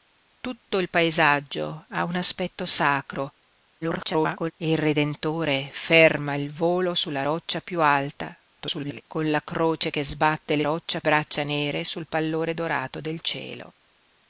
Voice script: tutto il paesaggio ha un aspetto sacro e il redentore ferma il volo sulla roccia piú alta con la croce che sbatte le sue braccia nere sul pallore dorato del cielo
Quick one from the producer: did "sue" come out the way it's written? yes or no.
no